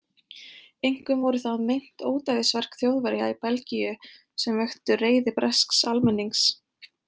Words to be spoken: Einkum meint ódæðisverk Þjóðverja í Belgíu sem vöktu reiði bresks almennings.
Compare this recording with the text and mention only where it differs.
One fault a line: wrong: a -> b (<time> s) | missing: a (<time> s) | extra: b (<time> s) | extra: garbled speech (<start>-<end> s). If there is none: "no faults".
extra: voru það (1.2 s)